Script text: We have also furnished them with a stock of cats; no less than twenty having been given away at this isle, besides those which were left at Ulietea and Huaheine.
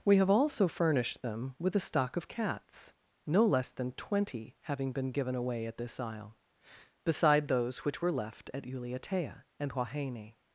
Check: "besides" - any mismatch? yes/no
yes